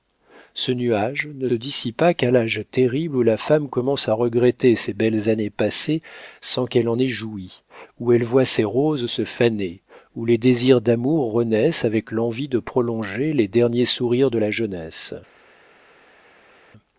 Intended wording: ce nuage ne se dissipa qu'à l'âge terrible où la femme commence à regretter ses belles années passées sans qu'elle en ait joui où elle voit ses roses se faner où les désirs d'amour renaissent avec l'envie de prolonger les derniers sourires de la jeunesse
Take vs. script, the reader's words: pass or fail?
fail